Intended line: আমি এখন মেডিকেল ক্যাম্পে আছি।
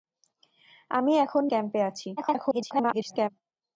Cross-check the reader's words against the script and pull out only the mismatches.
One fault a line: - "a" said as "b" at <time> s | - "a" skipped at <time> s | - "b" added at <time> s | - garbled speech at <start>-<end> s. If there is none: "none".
- "মেডিকেল" skipped at 1.4 s
- garbled speech at 2.2-3.3 s